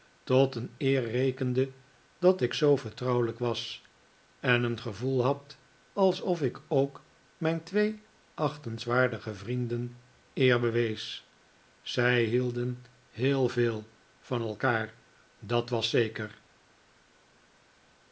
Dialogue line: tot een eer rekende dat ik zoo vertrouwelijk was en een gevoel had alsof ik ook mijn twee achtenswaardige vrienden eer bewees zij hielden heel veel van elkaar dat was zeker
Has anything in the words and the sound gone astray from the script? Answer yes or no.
no